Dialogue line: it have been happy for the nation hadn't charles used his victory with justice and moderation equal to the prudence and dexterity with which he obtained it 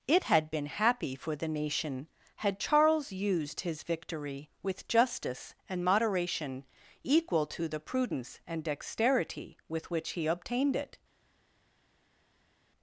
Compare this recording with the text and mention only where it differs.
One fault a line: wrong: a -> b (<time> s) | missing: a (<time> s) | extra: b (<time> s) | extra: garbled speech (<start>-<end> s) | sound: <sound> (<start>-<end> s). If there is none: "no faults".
wrong: have -> had (0.2 s)
wrong: hadn't -> had (2.4 s)